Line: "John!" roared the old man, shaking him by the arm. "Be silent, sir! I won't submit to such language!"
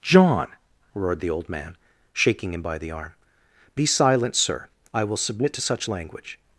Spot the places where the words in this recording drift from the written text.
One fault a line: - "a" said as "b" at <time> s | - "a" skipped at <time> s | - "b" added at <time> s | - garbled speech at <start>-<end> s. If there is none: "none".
- "won't" said as "will" at 5.0 s